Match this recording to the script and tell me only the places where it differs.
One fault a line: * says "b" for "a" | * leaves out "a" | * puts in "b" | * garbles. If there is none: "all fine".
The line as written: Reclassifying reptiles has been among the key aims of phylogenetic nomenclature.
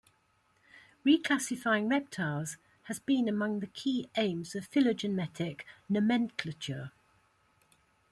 all fine